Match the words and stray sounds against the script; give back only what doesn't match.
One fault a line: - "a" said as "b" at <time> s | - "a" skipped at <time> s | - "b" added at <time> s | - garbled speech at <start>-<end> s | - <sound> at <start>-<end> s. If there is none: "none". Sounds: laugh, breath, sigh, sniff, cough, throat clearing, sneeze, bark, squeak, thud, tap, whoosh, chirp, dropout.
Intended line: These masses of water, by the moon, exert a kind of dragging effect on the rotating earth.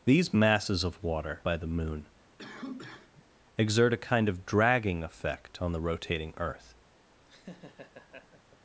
- cough at 2.4-3.3 s
- laugh at 7.3-8.6 s